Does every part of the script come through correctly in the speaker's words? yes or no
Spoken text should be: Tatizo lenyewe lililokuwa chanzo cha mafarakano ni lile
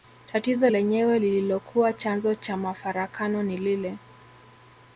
yes